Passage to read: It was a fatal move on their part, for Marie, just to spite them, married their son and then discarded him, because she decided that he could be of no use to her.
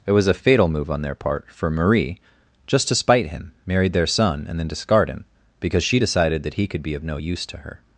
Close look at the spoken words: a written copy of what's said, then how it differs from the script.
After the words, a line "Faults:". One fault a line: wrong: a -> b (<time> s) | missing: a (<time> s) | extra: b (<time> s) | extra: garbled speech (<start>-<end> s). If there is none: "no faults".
It was a fatal move on their part, for Marie, just to spite him, married their son and then discard him, because she decided that he could be of no use to her.
Faults:
wrong: them -> him (3.3 s)
wrong: discarded -> discard (4.7 s)